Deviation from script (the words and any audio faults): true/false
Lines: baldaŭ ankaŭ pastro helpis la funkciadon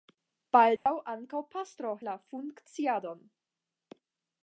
true